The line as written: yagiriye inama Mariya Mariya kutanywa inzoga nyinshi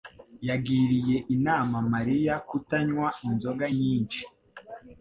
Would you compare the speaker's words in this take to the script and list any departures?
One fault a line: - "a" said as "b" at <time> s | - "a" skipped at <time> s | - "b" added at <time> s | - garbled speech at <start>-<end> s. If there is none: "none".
- "Mariya" skipped at 2.3 s